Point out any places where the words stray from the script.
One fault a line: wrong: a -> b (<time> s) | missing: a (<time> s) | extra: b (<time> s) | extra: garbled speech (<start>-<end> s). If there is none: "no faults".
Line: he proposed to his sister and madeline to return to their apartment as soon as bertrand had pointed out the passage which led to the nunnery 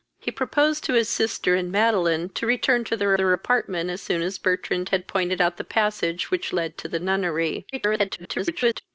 extra: their (3.1 s)
extra: garbled speech (7.7-8.8 s)